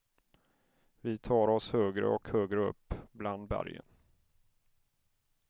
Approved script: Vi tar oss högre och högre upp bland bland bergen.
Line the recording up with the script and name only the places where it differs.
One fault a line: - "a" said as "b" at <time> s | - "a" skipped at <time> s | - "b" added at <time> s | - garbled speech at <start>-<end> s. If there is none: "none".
- "bland" skipped at 3.5 s